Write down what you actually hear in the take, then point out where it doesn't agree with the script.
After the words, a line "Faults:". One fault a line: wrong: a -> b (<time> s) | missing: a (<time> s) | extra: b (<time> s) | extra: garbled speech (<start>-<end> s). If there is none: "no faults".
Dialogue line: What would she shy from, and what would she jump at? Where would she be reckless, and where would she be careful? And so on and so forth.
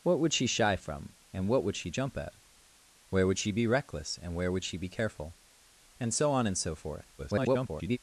What would she shy from, and what would she jump at? Where would she be reckless, and where would she be careful? And so on and so forth. [garbled]
Faults:
extra: garbled speech (7.2-8.0 s)